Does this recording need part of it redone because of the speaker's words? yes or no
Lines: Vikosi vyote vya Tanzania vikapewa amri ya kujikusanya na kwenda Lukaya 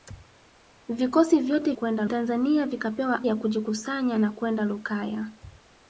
yes